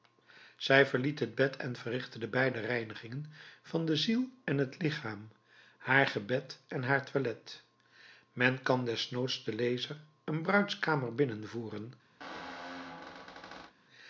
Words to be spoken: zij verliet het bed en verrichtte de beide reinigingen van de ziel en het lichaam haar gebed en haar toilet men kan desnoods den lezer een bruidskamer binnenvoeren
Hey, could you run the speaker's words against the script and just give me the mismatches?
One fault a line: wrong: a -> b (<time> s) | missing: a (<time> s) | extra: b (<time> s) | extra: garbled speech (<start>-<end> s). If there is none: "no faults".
no faults